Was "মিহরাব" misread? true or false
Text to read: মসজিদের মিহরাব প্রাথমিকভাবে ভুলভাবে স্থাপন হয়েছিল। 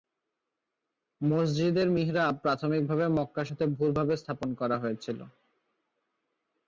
false